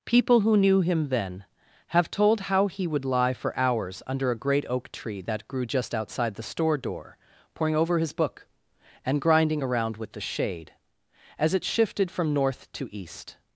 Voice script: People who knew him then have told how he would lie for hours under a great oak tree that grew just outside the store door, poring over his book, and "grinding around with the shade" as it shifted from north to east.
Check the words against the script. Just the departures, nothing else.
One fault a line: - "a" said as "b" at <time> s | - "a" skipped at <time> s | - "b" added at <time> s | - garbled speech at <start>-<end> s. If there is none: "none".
none